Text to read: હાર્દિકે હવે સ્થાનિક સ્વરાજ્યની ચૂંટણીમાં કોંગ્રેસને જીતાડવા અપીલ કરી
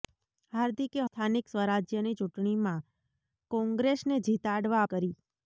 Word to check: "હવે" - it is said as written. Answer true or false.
false